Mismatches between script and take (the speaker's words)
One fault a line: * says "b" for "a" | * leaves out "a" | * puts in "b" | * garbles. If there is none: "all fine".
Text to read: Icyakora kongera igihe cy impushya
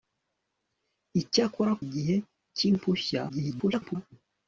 * leaves out "kongera"
* garbles